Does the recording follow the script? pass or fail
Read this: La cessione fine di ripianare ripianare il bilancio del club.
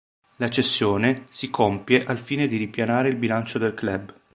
fail